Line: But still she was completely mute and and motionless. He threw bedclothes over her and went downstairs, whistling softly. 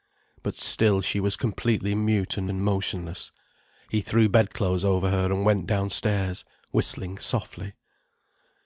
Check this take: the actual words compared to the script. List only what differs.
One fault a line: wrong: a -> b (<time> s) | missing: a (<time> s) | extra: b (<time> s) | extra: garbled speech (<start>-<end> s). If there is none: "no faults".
no faults